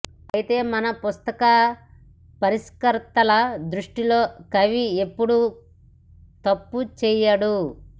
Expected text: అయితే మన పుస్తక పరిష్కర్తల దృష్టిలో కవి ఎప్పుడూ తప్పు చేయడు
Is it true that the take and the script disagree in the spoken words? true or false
false